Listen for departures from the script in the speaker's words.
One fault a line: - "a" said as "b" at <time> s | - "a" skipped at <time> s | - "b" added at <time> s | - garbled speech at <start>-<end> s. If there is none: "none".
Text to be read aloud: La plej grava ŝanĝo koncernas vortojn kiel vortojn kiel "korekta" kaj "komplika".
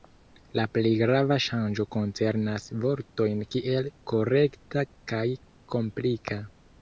- "vortojn kiel" skipped at 3.9 s